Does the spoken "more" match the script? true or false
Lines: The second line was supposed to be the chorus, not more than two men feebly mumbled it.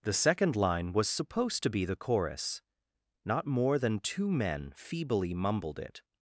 true